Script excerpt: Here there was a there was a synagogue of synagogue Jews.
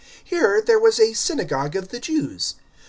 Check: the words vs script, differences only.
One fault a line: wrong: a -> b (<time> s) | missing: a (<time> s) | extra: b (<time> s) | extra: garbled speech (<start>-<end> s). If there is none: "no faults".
missing: there was a (1.1 s)
wrong: synagogue -> the (1.9 s)